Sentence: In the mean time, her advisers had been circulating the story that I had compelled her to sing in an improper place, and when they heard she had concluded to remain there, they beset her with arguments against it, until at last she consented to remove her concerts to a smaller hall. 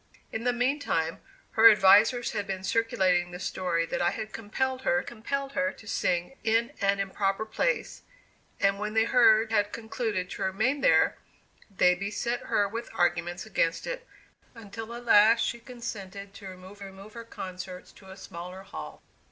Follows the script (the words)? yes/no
no